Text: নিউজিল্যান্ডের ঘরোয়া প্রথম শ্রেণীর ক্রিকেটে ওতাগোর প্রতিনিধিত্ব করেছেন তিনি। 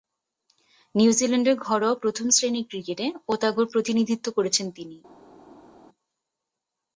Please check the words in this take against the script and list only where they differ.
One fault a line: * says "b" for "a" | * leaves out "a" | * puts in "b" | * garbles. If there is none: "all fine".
all fine